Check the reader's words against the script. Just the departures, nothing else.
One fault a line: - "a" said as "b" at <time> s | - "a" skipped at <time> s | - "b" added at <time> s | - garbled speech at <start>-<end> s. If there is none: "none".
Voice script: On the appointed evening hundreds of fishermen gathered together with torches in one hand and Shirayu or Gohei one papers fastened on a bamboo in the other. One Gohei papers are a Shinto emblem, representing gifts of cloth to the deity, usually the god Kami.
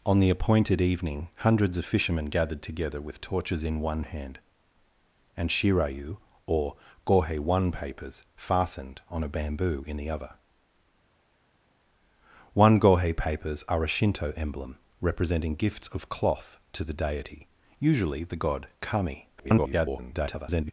- garbled speech at 19.4-20.7 s